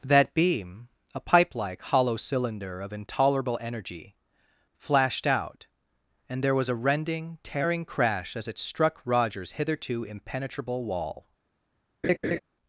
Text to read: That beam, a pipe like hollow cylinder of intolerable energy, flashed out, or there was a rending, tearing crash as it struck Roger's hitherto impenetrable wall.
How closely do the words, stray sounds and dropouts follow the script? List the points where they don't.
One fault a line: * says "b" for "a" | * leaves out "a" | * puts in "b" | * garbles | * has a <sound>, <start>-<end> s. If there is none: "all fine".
* says "and" for "or"
* has a laugh, 12.0-12.4 s